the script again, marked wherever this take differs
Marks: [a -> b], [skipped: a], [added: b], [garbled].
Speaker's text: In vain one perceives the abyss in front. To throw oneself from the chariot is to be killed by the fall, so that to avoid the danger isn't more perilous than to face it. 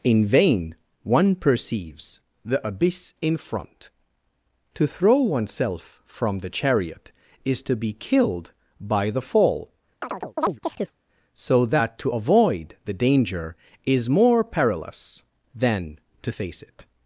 In vain one perceives the abyss in front. To throw oneself from the chariot is to be killed by the fall, so that to avoid the danger [isn't -> is] more perilous than to face it.